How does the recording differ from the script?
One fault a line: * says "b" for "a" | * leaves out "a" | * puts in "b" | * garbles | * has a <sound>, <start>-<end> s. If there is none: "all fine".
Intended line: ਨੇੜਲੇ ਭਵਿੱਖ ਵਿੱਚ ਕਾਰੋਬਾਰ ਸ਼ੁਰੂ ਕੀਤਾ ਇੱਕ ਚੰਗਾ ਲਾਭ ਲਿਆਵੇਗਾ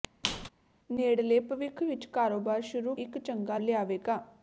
* has a squeak, 0.2-0.5 s
* leaves out "ਕੀਤਾ"
* leaves out "ਲਾਭ"